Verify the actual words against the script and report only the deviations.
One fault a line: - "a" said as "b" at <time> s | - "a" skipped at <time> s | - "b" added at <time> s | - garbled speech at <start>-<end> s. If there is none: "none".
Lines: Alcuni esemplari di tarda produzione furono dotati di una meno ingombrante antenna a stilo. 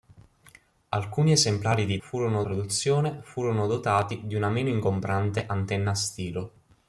- "tarda" said as "furono" at 2.0 s